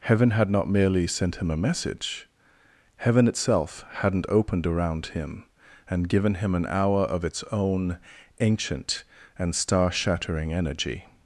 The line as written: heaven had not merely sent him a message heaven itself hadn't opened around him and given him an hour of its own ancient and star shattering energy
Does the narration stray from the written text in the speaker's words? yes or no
no